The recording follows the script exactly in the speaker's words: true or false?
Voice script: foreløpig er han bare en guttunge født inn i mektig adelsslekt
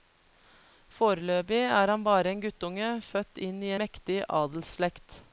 true